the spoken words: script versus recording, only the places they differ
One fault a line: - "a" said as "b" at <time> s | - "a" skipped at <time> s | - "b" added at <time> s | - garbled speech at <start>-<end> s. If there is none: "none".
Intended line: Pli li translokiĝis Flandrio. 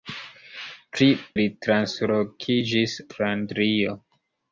none